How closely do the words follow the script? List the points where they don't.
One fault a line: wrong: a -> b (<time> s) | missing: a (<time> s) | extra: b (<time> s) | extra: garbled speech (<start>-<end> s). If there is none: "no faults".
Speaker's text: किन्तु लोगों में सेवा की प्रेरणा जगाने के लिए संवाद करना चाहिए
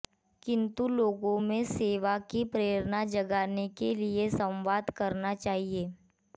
no faults